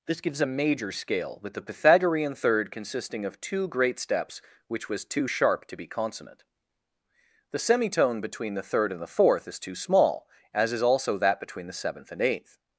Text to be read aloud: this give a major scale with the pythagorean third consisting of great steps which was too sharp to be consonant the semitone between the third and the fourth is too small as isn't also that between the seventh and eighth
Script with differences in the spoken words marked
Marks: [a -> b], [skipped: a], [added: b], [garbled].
this [give -> gives] a major scale with the pythagorean third consisting of [added: two] great steps which was too sharp to be consonant the semitone between the third and the fourth is too small as [isn't -> is] also that between the seventh and eighth